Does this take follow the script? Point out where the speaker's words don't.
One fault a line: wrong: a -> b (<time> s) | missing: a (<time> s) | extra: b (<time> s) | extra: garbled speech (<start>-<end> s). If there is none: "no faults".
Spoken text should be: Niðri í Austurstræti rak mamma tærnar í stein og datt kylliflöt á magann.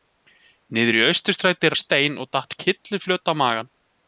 missing: rak mamma tærnar (1.7 s)